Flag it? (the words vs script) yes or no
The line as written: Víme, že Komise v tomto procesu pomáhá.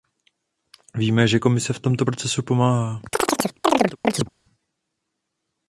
no